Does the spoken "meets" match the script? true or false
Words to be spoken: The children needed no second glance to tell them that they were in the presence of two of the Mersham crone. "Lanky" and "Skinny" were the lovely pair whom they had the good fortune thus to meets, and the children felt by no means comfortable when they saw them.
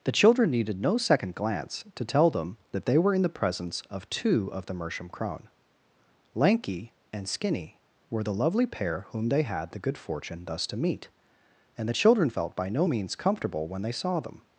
false